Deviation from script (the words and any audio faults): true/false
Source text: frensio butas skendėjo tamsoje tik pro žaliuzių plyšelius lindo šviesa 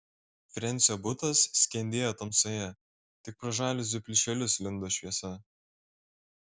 false